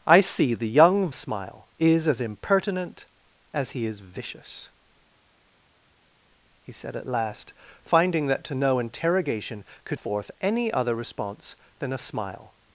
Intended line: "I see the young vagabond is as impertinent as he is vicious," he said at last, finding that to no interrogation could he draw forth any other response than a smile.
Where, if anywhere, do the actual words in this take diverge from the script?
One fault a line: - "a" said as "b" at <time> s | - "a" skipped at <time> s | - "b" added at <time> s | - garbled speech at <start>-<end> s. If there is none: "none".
- "vagabond" said as "smile" at 1.1 s
- "he draw" skipped at 10.0 s